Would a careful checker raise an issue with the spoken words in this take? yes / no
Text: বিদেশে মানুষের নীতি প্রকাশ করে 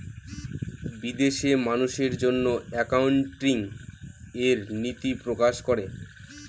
yes